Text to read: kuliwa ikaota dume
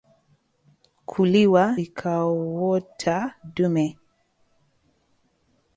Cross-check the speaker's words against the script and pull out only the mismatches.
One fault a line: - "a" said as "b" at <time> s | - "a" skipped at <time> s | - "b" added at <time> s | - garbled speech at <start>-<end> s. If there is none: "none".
none